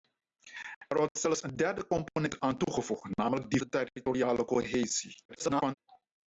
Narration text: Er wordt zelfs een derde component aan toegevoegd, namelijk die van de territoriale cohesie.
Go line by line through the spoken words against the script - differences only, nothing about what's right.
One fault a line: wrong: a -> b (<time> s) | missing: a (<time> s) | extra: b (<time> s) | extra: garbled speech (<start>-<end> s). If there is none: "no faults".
missing: van (3.6 s)
extra: garbled speech (5.3-5.7 s)